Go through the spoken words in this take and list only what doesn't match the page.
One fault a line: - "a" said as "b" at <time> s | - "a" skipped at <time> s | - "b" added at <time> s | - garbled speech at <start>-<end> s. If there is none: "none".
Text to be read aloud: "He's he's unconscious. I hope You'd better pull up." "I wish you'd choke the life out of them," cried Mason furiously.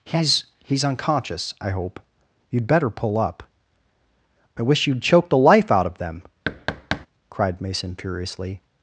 none